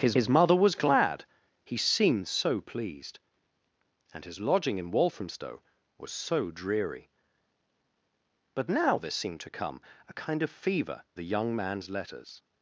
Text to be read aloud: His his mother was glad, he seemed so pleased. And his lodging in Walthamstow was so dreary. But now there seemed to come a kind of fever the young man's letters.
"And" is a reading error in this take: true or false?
false